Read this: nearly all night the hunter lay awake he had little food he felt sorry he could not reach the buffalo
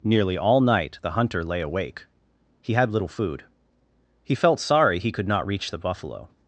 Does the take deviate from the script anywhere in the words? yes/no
no